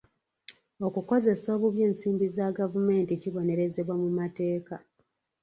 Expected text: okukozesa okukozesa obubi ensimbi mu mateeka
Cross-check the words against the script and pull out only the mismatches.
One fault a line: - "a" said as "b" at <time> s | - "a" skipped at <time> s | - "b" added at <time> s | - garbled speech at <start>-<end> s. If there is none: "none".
- "okukozesa" skipped at 1.5 s
- "za gavumenti kibonerezebwa" added at 2.4 s